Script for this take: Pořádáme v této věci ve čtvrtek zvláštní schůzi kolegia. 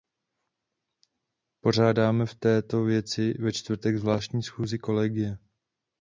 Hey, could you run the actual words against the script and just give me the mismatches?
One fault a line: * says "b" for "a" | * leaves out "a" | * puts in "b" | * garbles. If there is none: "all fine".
all fine